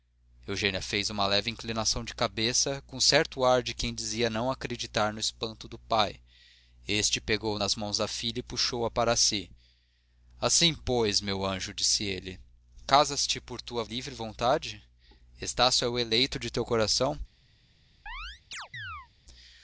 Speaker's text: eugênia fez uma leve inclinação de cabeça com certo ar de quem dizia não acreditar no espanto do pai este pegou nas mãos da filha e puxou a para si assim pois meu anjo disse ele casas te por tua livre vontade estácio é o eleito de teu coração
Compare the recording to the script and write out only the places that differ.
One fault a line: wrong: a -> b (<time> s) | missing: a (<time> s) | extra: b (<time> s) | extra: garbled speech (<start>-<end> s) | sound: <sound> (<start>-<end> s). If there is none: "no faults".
sound: chirp (18.1-19.1 s)